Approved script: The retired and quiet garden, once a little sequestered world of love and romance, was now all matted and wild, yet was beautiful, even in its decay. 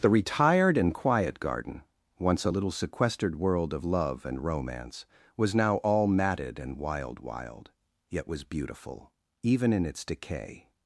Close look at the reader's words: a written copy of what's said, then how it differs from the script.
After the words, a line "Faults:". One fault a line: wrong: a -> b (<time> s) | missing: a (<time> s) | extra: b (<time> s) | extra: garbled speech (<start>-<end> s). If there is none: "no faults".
The retired and quiet garden, once a little sequestered world of love and romance, was now all matted and wild wild, yet was beautiful, even in its decay.
Faults:
extra: wild (7.2 s)